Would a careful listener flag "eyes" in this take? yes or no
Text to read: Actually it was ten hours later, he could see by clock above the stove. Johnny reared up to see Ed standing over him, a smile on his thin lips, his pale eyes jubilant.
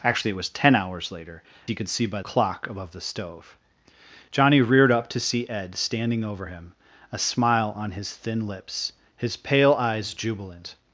no